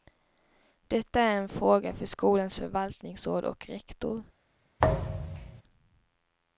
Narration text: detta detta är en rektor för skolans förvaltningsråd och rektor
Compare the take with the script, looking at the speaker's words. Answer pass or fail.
fail